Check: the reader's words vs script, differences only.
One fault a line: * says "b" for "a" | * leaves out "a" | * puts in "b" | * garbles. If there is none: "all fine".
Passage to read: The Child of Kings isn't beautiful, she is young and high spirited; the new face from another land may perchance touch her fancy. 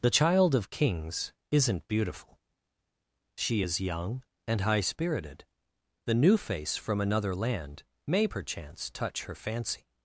all fine